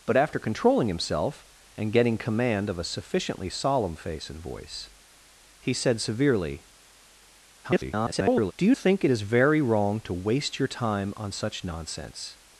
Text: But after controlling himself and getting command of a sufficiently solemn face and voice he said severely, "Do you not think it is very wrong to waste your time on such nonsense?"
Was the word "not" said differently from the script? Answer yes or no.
yes